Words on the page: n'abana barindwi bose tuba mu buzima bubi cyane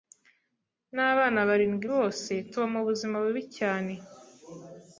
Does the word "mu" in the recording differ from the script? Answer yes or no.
no